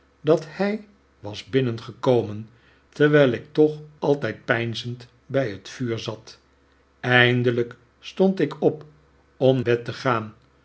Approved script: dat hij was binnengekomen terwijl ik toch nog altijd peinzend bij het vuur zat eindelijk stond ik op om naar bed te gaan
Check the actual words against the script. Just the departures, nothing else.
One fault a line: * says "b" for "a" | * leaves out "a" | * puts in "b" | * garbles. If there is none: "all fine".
* leaves out "nog"
* leaves out "naar"